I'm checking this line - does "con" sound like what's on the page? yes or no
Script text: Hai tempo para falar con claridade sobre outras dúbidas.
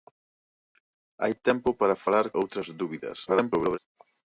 no